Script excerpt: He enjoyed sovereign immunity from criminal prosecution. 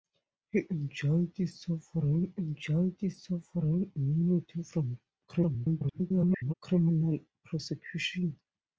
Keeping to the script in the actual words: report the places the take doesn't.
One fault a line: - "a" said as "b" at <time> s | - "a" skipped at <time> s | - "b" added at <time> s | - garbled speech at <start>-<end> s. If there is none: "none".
- "enjoyed sovereign" added at 2.4 s
- garbled speech at 5.3-6.5 s